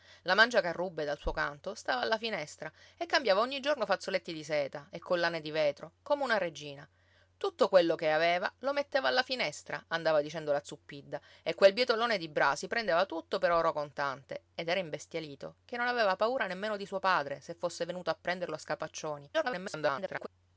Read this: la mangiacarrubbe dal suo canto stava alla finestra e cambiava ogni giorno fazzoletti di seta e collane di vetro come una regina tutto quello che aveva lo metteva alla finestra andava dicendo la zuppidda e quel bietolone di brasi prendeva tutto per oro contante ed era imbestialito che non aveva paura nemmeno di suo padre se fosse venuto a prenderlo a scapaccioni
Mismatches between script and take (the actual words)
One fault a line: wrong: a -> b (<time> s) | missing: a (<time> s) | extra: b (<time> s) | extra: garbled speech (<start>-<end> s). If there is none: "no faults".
extra: garbled speech (19.3-20.3 s)